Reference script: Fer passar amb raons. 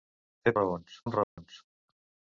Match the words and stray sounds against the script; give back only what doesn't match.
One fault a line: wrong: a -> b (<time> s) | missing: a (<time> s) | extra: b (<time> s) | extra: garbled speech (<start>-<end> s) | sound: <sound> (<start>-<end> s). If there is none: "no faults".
wrong: passar -> raons (0.6 s)
sound: dropout (1.2-1.4 s)